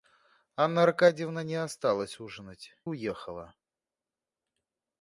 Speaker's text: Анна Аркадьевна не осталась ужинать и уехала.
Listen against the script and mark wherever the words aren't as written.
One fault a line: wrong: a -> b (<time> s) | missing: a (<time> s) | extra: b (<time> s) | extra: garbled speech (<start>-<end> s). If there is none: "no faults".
missing: и (2.7 s)